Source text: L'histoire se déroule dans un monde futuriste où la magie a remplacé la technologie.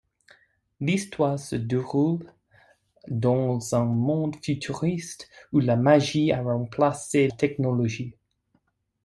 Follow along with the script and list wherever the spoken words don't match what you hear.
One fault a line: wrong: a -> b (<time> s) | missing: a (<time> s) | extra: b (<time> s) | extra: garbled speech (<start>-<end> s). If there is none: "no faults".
missing: la (7.3 s)